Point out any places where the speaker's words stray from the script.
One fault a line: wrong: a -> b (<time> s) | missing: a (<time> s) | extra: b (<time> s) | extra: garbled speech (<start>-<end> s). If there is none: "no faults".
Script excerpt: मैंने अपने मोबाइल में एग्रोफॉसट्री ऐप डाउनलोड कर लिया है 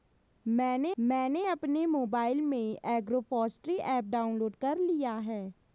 extra: मैंने (1.0 s)